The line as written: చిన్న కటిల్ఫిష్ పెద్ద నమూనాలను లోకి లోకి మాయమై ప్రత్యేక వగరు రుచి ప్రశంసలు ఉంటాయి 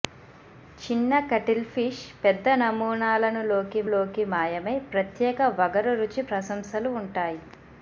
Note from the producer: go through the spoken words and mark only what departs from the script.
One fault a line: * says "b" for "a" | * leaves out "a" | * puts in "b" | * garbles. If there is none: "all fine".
all fine